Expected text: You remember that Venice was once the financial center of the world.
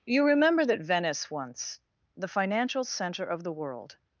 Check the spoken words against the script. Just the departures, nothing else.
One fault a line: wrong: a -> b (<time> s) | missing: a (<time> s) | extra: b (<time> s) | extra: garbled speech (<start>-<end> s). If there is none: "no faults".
missing: was (1.3 s)